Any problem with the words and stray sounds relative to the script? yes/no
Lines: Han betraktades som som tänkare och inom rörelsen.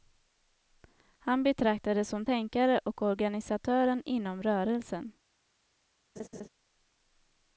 yes